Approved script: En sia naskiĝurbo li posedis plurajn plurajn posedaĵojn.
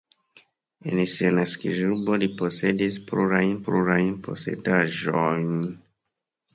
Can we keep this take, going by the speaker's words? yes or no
yes